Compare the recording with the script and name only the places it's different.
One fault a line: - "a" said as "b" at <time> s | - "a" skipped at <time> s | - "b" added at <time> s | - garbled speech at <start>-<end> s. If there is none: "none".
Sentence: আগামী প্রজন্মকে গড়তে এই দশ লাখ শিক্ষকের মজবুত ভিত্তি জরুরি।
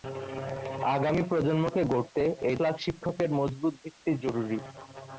- "দশ" skipped at 2.5 s